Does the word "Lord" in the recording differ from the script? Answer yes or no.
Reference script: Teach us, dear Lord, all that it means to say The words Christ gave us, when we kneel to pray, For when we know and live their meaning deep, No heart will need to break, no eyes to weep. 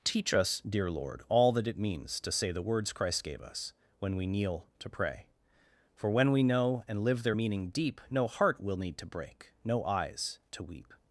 no